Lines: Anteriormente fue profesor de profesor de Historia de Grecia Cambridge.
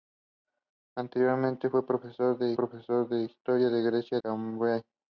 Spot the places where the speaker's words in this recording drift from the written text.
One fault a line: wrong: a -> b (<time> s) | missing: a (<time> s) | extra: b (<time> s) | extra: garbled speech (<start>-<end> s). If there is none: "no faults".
no faults